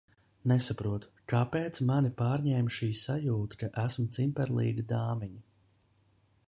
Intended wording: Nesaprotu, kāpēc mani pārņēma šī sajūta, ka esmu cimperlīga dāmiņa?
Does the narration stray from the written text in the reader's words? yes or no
no